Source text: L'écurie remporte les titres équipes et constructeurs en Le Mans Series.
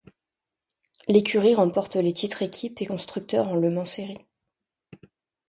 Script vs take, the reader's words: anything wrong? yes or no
no